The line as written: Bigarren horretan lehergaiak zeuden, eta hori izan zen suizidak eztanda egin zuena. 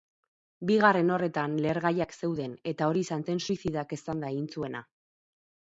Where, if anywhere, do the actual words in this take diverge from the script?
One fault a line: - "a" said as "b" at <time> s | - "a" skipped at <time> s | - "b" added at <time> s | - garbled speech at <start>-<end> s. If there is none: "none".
none